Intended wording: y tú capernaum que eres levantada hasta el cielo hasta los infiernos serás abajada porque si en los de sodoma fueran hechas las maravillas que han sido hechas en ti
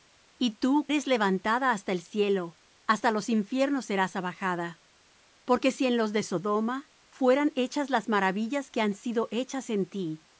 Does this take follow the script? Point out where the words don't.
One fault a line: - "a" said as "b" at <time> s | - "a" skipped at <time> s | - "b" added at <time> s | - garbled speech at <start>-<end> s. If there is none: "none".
- "capernaum que" skipped at 0.9 s